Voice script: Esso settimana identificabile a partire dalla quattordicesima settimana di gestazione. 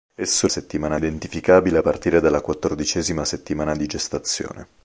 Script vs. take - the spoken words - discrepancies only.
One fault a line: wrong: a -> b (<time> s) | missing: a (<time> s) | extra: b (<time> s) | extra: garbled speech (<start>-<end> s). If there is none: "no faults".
no faults